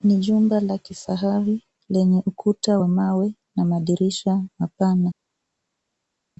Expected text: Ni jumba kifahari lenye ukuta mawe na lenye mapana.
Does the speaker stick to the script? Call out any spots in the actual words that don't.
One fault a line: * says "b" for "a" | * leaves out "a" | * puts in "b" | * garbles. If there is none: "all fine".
* puts in "la"
* puts in "wa"
* says "madirisha" for "lenye"